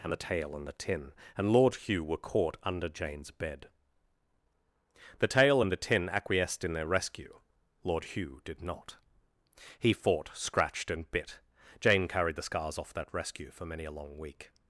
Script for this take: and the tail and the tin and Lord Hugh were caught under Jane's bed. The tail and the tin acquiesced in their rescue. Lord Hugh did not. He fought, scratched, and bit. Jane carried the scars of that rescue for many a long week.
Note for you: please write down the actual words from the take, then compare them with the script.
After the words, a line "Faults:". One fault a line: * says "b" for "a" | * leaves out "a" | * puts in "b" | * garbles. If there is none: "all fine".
and the tail and the tin and Lord Hugh were caught under Jane's bed. The tail and the tin acquiesced in their rescue. Lord Hugh did not. He fought, scratched, and bit. Jane carried the scars off that rescue for many a long week.
Faults:
* says "off" for "of"